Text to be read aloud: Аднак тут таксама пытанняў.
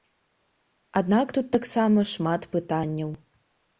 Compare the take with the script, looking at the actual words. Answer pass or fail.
fail